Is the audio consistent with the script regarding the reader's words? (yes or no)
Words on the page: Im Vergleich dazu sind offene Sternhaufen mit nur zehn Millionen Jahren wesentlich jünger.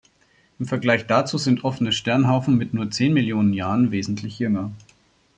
yes